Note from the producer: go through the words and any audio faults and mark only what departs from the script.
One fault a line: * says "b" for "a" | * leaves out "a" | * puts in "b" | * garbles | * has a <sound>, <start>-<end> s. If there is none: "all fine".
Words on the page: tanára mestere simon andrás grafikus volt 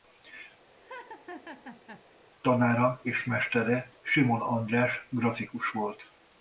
* has a laugh, 0.8-2.1 s
* puts in "és"